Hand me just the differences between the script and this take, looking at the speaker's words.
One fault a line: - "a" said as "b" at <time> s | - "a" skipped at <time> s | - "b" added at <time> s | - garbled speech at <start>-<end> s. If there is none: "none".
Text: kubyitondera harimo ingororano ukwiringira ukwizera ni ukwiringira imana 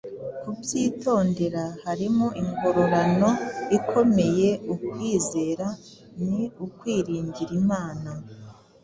- "ukwiringira" said as "ikomeye" at 3.8 s